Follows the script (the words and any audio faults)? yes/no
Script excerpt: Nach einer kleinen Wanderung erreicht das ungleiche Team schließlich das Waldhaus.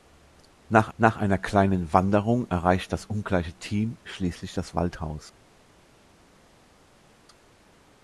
no